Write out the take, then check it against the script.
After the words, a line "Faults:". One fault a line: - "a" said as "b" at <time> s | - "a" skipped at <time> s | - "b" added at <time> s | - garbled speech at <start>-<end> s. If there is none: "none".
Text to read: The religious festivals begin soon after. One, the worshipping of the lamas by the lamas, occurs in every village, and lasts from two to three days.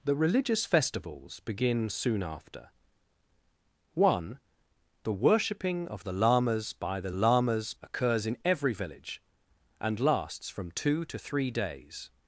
The religious festivals begin soon after. One, the worshipping of the lamas by the lamas, occurs in every village, and lasts from two to three days.
Faults:
none